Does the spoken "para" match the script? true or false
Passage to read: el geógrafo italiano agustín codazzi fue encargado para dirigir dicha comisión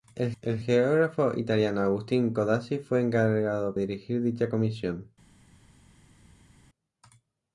false